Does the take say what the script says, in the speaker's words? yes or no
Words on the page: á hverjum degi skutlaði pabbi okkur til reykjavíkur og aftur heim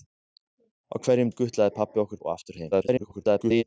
no